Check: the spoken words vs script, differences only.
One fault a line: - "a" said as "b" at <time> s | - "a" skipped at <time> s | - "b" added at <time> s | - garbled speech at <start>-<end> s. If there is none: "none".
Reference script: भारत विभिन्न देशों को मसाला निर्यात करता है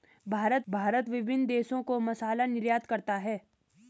- "भारत" added at 0.7 s